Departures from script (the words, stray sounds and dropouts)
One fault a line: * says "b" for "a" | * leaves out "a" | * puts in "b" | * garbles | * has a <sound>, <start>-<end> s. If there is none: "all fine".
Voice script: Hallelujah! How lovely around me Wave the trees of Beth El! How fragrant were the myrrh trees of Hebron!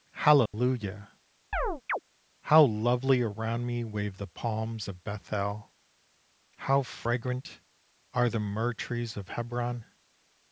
* has a dropout, 0.5-0.5 s
* has a chirp, 1.5-2.0 s
* says "palms" for "trees"
* says "are" for "were"